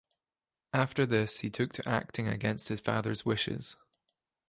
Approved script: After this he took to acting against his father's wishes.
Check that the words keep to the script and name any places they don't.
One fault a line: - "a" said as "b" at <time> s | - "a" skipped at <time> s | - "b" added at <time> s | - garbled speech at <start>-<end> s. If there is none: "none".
none